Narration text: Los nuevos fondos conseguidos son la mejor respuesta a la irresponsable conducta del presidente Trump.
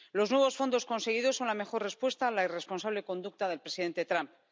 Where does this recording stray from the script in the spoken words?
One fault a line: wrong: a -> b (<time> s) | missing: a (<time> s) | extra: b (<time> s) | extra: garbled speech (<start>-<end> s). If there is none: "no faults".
no faults